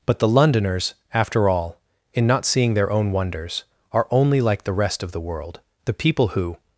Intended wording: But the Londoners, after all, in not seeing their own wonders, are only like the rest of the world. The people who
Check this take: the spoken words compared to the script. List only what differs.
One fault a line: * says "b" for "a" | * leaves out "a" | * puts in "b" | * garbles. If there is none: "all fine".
all fine